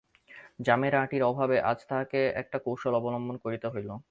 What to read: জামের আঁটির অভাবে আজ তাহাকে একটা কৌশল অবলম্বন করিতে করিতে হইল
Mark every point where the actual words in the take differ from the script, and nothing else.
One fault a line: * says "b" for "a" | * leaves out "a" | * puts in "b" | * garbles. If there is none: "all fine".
* leaves out "করিতে"